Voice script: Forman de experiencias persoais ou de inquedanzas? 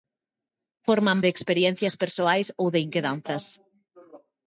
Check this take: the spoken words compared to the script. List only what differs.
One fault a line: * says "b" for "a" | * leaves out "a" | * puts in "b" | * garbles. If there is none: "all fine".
all fine